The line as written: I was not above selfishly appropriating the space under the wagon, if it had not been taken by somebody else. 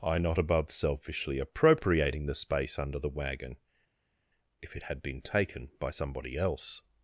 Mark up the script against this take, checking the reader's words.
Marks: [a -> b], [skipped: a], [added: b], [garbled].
I [skipped: was] not above selfishly appropriating the space under the wagon, if it had [skipped: not] been taken by somebody else.